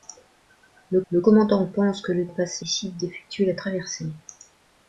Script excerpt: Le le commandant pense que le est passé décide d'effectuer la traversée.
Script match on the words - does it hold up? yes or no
yes